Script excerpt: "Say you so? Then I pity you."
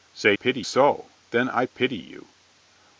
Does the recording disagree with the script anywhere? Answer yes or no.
yes